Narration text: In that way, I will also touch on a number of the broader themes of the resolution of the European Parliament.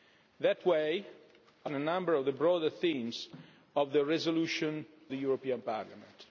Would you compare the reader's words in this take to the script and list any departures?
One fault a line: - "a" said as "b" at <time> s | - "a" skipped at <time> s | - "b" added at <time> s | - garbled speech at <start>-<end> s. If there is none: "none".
- "will also touch" skipped at 1.7 s
- "of" skipped at 4.8 s